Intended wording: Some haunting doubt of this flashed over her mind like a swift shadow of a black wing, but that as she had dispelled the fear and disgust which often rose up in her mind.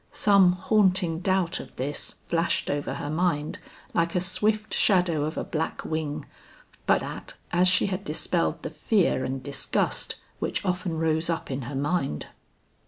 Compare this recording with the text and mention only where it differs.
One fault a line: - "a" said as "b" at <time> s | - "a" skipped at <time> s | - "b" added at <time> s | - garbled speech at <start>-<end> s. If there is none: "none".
none